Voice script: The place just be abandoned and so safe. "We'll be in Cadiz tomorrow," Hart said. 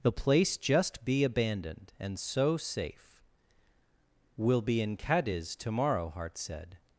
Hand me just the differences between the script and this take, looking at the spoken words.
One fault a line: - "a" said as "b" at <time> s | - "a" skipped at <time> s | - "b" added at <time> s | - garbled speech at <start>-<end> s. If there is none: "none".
none